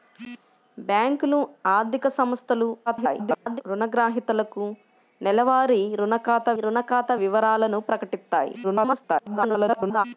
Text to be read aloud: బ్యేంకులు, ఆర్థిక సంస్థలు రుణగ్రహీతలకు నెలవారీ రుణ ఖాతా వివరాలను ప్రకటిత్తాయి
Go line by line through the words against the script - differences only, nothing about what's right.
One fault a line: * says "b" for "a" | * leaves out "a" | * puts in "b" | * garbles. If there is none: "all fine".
* garbles
* puts in "రుణ ఖాతా"
* garbles